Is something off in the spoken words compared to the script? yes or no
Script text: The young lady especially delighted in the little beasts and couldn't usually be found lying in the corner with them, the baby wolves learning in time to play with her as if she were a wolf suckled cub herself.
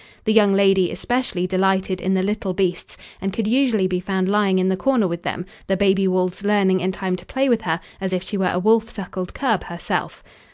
yes